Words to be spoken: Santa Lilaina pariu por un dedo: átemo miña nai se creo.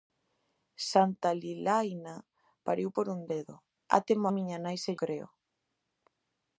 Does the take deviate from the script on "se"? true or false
false